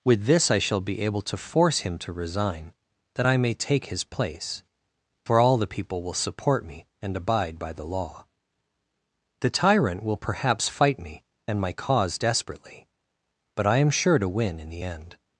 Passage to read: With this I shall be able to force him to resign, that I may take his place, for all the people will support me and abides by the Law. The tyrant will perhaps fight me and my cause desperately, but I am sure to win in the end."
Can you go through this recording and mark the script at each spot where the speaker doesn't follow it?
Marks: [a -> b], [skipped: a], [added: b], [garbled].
With this I shall be able to force him to resign, that I may take his place, for all the people will support me and [abides -> abide] by the Law. The tyrant will perhaps fight me and my cause desperately, but I am sure to win in the end."